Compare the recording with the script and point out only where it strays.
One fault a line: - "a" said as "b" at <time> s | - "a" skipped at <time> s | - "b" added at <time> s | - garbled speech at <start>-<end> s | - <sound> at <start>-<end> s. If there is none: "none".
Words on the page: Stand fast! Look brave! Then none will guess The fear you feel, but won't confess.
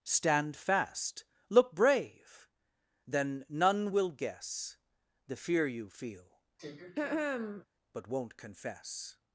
- throat clearing at 6.6-7.7 s